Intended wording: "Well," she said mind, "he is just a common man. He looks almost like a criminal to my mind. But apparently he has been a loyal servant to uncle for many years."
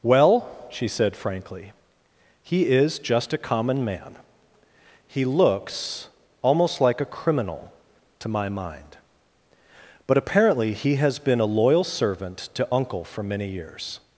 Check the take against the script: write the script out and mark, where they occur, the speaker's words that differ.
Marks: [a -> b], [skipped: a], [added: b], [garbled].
"Well," she said [mind, -> frankly] "he is just a common man. He looks almost like a criminal to my mind. But apparently he has been a loyal servant to uncle for many years."